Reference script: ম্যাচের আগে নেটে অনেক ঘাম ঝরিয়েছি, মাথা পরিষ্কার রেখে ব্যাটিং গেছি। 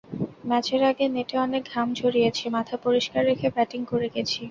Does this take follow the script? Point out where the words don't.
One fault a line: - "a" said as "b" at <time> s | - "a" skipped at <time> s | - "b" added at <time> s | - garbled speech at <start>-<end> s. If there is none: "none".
- "করে" added at 3.9 s